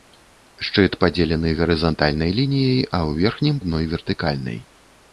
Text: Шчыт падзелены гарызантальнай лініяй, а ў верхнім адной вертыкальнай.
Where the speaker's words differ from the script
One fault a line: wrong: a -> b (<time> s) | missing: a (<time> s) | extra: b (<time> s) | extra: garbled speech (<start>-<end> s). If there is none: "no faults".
no faults